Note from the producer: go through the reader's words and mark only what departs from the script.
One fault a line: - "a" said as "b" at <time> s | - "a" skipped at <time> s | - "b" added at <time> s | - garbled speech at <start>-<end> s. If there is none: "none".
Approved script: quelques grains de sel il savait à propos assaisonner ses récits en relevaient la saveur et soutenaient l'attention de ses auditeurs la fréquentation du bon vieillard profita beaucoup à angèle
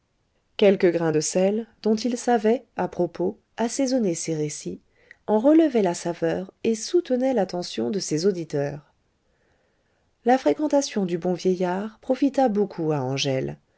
- "dont" added at 1.8 s